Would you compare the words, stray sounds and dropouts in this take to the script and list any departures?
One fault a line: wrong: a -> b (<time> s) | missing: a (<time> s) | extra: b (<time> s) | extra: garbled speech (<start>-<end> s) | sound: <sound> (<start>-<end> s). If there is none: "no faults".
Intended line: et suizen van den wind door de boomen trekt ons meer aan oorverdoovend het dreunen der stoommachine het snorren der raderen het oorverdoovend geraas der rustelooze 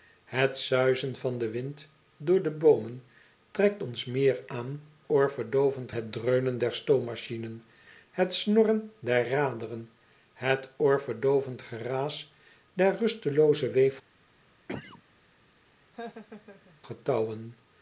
sound: cough (14.7-15.0 s)
sound: laugh (15.9-16.8 s)